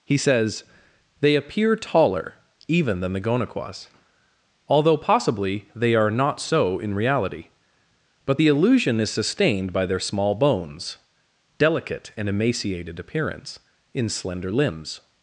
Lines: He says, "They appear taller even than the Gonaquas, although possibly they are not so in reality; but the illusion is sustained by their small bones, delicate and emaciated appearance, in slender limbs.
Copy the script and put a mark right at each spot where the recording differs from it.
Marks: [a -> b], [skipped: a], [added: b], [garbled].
He says, "They appear taller even than the Gonaquas, although possibly they are not so in reality; but the illusion is sustained by their small bones, delicate and emaciated appearance, in slender limbs.